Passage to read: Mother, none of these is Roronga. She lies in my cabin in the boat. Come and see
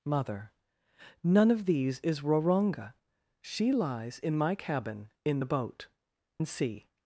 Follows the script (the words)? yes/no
no